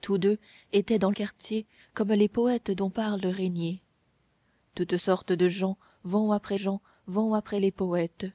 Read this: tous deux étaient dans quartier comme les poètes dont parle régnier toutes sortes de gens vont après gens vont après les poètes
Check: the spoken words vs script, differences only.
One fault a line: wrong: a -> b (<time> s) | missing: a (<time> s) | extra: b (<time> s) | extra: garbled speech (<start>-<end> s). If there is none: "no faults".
no faults